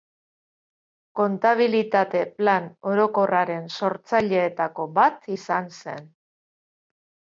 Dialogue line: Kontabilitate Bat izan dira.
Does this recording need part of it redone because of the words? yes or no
yes